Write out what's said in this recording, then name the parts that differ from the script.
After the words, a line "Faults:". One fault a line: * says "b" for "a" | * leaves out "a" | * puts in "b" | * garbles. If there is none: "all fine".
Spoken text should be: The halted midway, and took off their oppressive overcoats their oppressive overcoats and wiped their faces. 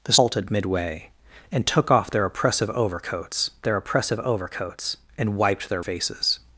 The halted midway, and took off their oppressive overcoats their oppressive overcoats and wiped their faces.
Faults:
all fine